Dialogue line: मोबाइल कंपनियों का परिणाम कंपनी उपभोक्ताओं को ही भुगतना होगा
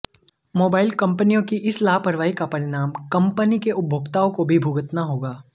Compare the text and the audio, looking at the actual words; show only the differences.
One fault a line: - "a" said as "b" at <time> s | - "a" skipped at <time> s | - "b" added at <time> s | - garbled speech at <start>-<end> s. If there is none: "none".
- "की इस लापरवाही" added at 1.4 s
- "के" added at 3.6 s
- "ही" said as "भी" at 4.4 s